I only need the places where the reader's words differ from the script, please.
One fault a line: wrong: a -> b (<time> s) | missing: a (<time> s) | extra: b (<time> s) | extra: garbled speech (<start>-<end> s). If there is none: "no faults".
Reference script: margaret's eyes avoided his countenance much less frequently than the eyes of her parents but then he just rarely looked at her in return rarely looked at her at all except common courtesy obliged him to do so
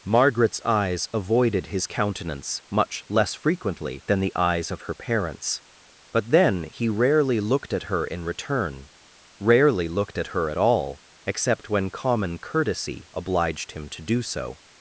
missing: just (6.9 s)
extra: when (11.7 s)